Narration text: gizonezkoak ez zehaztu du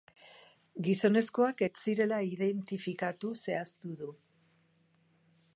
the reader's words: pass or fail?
fail